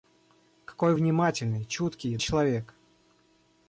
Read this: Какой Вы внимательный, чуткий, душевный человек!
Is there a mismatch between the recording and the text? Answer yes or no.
yes